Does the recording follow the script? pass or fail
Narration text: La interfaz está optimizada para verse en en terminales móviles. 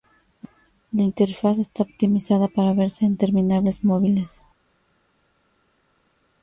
fail